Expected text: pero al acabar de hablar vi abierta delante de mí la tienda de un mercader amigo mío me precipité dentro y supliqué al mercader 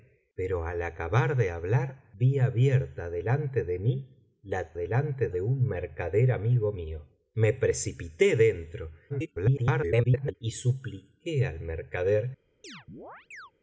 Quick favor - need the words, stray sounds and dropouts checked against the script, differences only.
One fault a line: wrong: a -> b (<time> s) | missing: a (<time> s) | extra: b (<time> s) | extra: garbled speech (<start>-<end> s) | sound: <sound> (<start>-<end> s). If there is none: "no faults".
wrong: tienda -> delante (4.7 s)
extra: garbled speech (9.1-10.4 s)
sound: chirp (12.6-13.5 s)